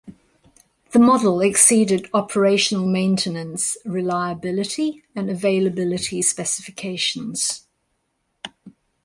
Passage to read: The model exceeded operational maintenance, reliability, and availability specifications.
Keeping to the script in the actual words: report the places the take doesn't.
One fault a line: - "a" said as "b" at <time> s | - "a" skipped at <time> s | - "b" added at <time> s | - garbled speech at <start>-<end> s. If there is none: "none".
none